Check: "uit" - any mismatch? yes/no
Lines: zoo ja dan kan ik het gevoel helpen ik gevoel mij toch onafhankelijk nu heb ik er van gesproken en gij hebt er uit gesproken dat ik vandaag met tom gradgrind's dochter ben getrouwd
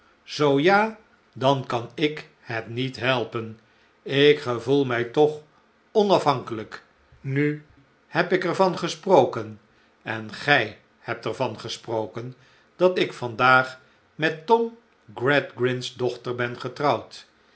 yes